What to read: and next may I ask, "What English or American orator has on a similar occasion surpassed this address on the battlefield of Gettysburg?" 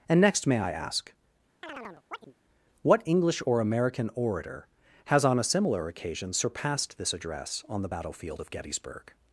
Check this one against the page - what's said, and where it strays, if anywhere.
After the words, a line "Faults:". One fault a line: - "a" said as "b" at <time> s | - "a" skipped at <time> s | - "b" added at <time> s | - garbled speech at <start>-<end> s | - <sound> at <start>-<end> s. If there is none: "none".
and next may I ask, "What English or American orator has on a similar occasion surpassed this address on the battlefield of Gettysburg?"
Faults:
- chirp at 1.6-2.3 s